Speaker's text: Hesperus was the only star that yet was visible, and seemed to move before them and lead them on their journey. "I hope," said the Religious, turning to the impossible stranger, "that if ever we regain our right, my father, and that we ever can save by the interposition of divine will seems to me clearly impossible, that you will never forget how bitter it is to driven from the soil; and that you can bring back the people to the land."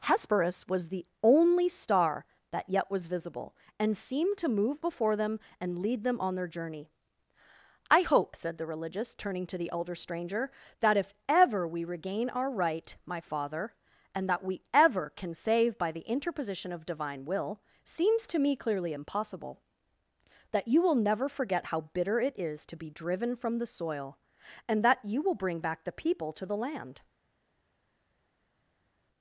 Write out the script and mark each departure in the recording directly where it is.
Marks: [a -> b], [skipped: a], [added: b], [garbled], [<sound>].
Hesperus was the only star that yet was visible, and seemed to move before them and lead them on their journey. "I hope," said the Religious, turning to the [impossible -> elder] stranger, "that if ever we regain our right, my father, and that we ever can save by the interposition of divine will seems to me clearly impossible, that you will never forget how bitter it is to [added: be] driven from the soil; and that you [can -> will] bring back the people to the land."